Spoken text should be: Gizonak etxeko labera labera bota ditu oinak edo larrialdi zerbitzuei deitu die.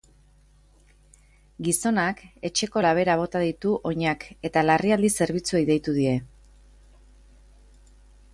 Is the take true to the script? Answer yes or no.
no